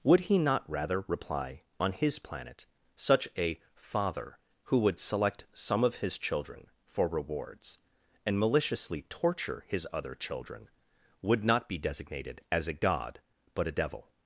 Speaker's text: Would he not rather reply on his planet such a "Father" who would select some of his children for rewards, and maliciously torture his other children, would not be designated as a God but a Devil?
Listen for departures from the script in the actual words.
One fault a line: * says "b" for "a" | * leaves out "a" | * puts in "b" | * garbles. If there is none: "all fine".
all fine